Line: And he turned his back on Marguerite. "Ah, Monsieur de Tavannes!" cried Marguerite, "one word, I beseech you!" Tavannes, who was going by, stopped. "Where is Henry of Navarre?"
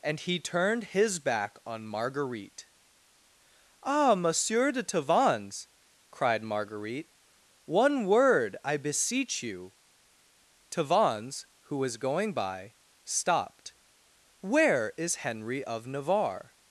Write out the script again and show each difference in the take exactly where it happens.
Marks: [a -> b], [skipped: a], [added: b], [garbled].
And he turned his back on Marguerite. "Ah, Monsieur de Tavannes!" cried Marguerite, "one word, I beseech you!" Tavannes, who was going by, stopped. "Where is Henry of Navarre?"